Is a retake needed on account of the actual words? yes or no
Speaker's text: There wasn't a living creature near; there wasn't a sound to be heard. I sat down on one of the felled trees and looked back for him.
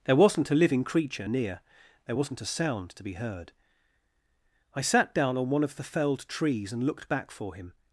no